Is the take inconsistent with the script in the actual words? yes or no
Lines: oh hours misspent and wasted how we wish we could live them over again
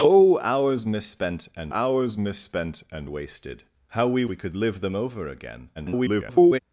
yes